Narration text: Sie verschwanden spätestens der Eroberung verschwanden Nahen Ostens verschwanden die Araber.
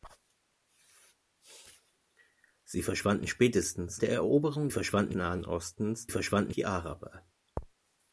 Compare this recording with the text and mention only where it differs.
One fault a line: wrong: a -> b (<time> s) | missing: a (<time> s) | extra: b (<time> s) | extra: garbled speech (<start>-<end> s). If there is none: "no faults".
no faults